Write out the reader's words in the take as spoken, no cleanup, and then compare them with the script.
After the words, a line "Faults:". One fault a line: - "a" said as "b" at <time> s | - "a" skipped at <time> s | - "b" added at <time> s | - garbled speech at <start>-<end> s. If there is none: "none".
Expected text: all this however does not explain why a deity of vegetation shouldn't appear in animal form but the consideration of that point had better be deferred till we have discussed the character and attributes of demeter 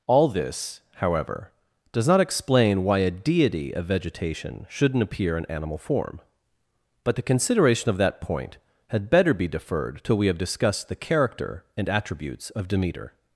all this however does not explain why a deity of vegetation shouldn't appear in animal form but the consideration of that point had better be deferred till we have discussed the character and attributes of demeter
Faults:
none